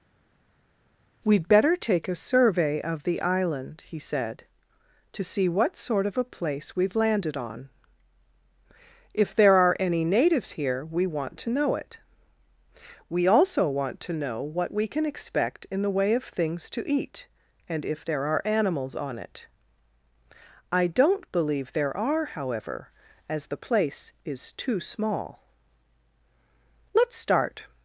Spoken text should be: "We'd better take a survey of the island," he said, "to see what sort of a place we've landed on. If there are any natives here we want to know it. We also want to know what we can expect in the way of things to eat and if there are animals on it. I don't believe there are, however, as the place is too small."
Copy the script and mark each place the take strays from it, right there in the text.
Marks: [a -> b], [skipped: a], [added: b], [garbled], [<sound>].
"We'd better take a survey of the island," he said, "to see what sort of a place we've landed on. If there are any natives here we want to know it. We also want to know what we can expect in the way of things to eat and if there are animals on it. I don't believe there are, however, as the place is too small." [added: Let's start]